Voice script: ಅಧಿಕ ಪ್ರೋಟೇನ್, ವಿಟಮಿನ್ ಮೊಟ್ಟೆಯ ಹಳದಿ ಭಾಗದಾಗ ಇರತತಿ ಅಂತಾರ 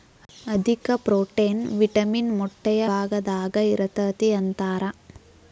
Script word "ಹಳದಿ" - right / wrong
wrong